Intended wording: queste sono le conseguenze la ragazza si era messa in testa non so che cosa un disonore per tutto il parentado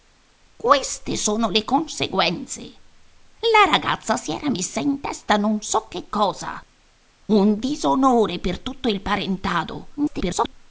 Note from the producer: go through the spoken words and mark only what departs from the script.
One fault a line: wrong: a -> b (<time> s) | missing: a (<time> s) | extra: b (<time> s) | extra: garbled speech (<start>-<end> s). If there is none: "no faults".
extra: garbled speech (10.0-10.5 s)